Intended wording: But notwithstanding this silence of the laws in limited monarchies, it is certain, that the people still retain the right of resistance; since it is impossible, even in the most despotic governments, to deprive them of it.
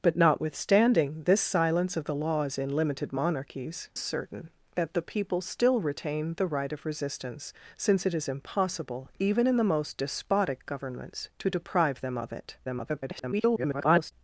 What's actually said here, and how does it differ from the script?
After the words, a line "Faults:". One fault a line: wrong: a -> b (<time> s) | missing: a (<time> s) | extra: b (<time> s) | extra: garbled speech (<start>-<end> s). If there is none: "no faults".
But notwithstanding this silence of the laws in limited monarchies, certain, that the people still retain the right of resistance; since it is impossible, even in the most despotic governments, to deprive them of it. [garbled]
Faults:
missing: it is (3.9 s)
extra: garbled speech (12.6-14.1 s)